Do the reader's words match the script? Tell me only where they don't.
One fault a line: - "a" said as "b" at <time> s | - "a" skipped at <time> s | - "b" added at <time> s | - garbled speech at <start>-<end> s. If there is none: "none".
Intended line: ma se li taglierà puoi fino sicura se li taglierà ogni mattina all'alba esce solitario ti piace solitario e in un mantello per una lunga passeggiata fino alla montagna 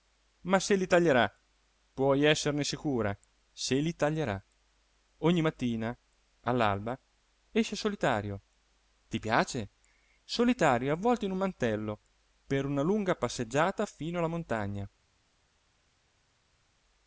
- "fino" said as "esserne" at 2.2 s
- "avvolto" added at 10.9 s